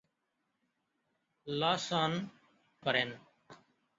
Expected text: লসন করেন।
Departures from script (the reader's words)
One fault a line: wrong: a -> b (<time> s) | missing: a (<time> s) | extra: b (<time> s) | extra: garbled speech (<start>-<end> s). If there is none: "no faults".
no faults